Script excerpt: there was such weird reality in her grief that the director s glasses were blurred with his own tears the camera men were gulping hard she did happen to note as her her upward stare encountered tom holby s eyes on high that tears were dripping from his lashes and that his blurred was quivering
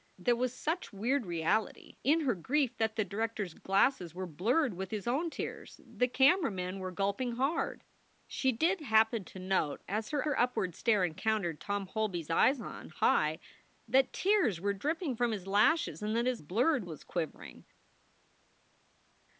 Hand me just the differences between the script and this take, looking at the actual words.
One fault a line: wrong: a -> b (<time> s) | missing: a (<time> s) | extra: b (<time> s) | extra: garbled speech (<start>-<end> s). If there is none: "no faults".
no faults